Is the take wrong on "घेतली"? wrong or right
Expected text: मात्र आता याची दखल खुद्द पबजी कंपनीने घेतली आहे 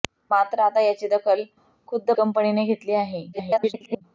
right